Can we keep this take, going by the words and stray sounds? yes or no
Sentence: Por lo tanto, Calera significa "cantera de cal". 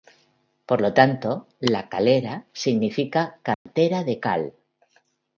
no